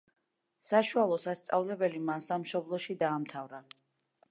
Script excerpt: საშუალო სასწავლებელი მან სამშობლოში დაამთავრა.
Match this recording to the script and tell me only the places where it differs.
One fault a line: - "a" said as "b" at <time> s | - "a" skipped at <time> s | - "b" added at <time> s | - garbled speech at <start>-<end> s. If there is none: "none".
none